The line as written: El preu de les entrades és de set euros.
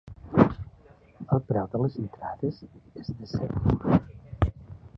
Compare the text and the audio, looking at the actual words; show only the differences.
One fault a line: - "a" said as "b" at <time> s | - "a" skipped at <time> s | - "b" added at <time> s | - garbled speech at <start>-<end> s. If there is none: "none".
none